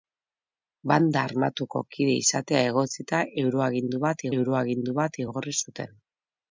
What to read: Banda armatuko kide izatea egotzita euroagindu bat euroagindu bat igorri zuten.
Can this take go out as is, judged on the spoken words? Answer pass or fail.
pass